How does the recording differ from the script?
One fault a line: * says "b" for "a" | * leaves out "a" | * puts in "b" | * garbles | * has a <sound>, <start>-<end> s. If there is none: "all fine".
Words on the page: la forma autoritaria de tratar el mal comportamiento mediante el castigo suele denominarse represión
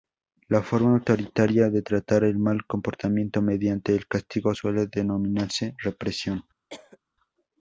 * has a cough, 6.7-7.0 s